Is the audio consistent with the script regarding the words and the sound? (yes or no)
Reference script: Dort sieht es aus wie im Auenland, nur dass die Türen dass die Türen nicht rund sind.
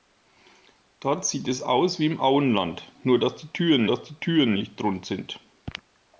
yes